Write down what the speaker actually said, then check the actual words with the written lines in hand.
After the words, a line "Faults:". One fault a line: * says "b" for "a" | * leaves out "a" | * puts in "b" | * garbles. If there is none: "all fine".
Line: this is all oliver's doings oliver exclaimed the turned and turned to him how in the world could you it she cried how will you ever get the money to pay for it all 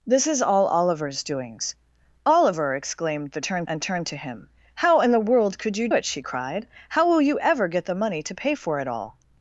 this is all oliver's doings oliver exclaimed the turned and turned to him how in the world could you it she cried how will you ever get the money to pay for it all
Faults:
all fine